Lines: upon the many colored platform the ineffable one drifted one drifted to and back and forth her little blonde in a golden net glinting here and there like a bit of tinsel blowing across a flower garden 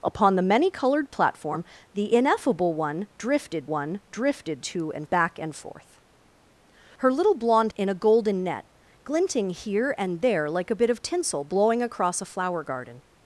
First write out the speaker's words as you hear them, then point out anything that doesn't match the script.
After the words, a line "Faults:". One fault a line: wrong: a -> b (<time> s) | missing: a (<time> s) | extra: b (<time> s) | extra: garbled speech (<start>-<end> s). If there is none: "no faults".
upon the many colored platform the ineffable one drifted one drifted to and back and forth her little blonde in a golden net glinting here and there like a bit of tinsel blowing across a flower garden
Faults:
no faults